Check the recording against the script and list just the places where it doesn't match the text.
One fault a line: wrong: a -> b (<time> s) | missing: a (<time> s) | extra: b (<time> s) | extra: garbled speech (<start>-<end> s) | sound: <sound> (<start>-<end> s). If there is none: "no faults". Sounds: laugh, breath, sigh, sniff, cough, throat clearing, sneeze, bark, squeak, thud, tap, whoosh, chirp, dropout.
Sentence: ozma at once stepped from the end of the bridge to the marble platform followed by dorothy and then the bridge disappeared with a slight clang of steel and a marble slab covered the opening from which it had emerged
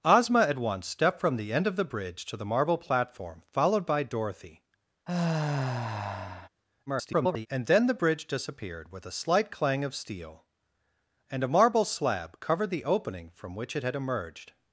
sound: sigh (5.1-6.5 s)
extra: garbled speech (6.9-7.5 s)